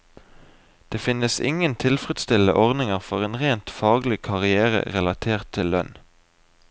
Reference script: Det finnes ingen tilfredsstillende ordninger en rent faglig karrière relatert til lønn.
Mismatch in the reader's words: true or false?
true